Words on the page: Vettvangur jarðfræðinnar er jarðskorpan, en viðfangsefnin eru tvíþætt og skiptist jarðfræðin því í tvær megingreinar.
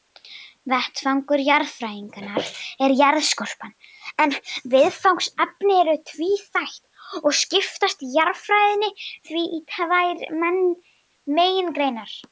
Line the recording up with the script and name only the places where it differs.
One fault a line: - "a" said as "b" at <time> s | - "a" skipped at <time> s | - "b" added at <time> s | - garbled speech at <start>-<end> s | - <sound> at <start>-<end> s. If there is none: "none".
none